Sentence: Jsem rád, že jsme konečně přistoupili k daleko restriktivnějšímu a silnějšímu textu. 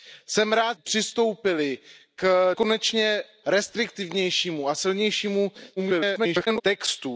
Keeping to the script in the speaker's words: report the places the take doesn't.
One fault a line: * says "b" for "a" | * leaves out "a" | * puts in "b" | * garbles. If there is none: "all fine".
* leaves out "že jsme konečně"
* says "konečně" for "daleko"
* garbles